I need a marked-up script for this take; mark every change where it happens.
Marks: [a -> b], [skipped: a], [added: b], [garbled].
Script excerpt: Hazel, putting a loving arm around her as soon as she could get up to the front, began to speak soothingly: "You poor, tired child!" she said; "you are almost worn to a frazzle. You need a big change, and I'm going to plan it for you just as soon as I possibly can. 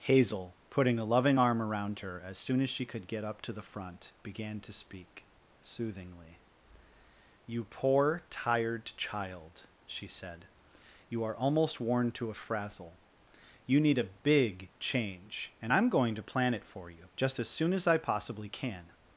Hazel, putting a loving arm around her as soon as she could get up to the front, began to speak soothingly: "You poor, tired child!" she said; "you are almost worn to a frazzle. You need a big change, and I'm going to plan it for you just as soon as I possibly can.